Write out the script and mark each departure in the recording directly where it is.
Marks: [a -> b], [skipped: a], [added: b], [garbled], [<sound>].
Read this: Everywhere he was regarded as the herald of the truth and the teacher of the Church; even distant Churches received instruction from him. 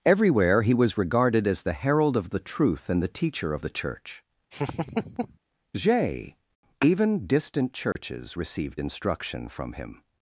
Everywhere he was regarded as the herald of the truth and the teacher of the Church; [laugh] [added: j] even distant Churches [dropout] received instruction from him.